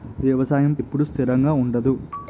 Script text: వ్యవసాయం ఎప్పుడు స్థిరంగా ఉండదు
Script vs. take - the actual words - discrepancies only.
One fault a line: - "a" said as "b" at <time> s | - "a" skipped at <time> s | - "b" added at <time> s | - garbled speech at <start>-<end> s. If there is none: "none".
none